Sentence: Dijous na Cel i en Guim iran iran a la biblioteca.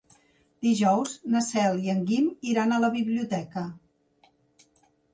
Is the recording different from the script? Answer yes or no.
yes